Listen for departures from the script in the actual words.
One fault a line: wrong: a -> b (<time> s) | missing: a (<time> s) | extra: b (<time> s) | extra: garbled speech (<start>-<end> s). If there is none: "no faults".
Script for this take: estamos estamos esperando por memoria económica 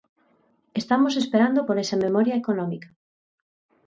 missing: estamos (1.1 s)
extra: esa (1.8 s)